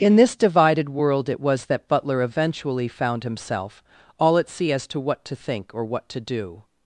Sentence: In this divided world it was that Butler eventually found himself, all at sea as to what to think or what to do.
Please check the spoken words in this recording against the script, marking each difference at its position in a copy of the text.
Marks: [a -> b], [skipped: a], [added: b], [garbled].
In this divided world it was that Butler eventually found himself, all at sea as to what to think or what to do.